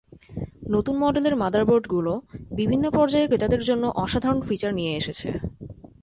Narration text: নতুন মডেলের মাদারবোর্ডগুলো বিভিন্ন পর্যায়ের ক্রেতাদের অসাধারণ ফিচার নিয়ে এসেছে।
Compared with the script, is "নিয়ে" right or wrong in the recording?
right